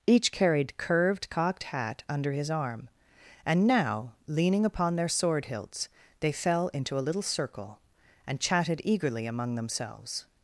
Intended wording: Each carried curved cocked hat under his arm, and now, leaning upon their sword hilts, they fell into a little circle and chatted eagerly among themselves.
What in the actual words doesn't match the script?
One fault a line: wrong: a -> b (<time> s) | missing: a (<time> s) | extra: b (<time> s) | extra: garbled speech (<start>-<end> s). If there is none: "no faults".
no faults